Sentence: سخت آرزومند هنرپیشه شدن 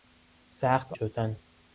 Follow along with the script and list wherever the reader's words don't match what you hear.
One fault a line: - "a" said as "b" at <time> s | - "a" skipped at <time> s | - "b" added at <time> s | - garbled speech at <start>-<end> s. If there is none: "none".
- "آرزومند هنرپیشه" skipped at 0.9 s